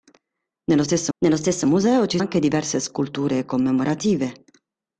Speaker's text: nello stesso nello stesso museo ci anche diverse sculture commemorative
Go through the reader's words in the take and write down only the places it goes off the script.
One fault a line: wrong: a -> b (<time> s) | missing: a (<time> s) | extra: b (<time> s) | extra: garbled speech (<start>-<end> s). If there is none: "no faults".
no faults